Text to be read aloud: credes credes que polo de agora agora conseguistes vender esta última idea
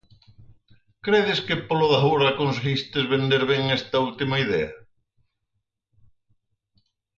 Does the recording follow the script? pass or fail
fail